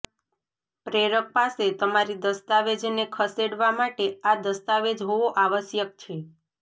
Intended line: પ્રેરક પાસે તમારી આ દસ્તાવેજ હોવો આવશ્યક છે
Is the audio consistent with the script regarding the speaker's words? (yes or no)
no